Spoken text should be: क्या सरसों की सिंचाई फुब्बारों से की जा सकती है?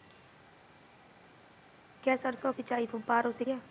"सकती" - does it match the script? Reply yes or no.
no